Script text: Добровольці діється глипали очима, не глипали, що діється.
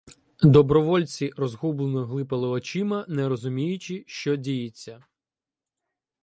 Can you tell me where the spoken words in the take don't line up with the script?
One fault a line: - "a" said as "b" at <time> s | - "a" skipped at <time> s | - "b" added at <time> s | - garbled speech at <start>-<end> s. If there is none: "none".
- "діється" said as "розгублено" at 1.4 s
- "глипали" said as "розуміючи" at 3.3 s